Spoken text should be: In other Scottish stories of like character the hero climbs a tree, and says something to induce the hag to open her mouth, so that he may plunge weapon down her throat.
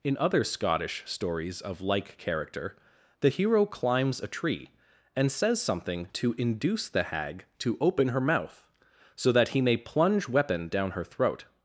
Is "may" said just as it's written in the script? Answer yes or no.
yes